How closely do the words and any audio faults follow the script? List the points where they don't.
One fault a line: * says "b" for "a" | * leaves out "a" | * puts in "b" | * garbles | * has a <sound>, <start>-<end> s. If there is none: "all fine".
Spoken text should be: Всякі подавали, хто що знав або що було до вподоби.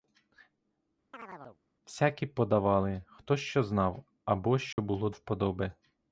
* has a chirp, 1.1-1.6 s
* has a dropout, 4.7-4.8 s
* leaves out "до"